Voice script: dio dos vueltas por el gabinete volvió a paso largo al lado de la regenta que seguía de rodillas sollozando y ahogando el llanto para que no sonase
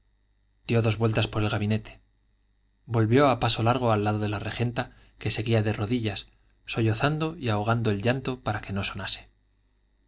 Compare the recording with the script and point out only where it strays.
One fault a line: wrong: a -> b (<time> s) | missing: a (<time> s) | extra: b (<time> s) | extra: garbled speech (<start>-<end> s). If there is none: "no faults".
no faults